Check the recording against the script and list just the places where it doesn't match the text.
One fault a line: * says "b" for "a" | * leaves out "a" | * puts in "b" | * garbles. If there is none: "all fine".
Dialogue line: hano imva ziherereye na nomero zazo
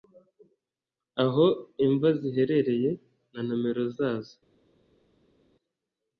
* says "aho" for "hano"